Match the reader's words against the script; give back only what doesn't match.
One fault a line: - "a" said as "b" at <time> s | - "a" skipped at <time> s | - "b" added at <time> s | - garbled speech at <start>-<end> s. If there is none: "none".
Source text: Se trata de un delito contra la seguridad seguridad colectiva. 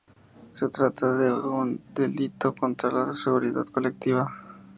- "seguridad" skipped at 3.7 s